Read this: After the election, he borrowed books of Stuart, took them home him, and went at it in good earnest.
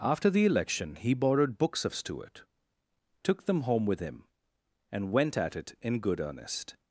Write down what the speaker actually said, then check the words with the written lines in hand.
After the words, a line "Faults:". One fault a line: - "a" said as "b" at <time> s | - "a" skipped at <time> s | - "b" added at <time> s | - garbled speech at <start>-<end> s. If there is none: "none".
After the election, he borrowed books of Stuart, took them home with him, and went at it in good earnest.
Faults:
- "with" added at 3.9 s